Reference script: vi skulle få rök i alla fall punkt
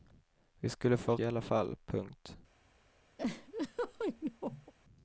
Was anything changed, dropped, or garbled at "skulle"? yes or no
no